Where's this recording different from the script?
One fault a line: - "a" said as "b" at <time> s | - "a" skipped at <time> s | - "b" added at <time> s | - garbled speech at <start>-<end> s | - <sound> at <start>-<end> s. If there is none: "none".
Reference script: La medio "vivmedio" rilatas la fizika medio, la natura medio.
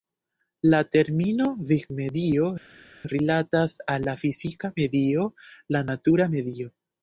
- "medio" said as "termino" at 0.9 s
- "al" added at 4.0 s